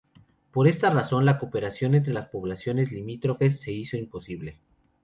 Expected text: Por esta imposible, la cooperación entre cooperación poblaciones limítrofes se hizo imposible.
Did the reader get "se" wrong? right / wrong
right